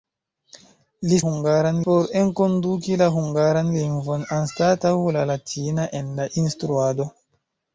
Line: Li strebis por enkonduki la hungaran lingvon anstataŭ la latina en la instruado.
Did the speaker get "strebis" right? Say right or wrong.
wrong